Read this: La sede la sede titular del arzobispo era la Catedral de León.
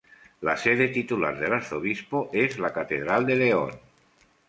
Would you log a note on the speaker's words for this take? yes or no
yes